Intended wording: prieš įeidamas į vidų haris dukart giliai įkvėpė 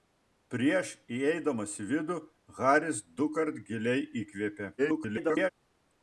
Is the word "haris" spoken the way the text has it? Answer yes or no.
yes